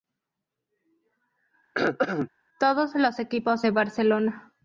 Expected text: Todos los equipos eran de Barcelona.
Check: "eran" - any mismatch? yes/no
yes